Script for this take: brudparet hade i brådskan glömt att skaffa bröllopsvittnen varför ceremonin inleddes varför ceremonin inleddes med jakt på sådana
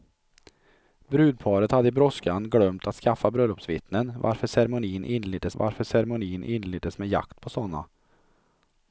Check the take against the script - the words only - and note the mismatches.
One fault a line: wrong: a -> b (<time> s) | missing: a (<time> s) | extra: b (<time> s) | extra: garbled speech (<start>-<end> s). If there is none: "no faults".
no faults